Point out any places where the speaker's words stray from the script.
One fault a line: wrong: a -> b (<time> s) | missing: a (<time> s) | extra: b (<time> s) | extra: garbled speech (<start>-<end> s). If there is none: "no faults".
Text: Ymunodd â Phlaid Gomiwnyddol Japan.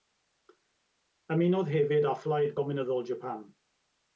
extra: hefyd (1.8 s)